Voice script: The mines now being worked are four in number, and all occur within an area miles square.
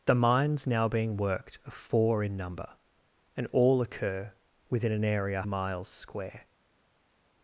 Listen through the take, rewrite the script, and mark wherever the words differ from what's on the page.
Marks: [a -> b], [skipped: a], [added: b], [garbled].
The mines now being worked are four in number, and all occur within an area miles square.